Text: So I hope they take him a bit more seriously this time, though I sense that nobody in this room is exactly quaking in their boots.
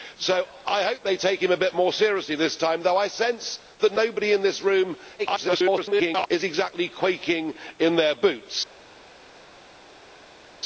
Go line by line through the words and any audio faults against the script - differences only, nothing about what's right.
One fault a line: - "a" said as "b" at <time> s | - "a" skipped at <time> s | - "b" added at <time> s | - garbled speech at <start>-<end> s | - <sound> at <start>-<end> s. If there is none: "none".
- garbled speech at 5.2-6.3 s